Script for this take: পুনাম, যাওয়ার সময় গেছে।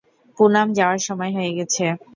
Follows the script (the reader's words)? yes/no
no